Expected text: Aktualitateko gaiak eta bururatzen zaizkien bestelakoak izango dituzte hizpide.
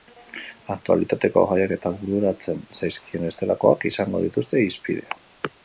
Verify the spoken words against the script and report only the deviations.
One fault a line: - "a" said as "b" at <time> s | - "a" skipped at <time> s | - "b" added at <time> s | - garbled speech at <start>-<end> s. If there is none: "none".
none